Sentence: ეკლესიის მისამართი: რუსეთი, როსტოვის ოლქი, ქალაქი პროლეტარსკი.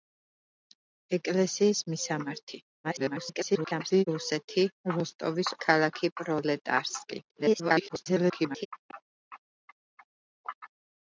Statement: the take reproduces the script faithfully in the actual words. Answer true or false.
false